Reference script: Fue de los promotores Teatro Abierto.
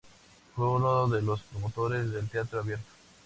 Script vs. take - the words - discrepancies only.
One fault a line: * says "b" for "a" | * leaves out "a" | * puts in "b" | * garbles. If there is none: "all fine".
* puts in "uno"
* puts in "del"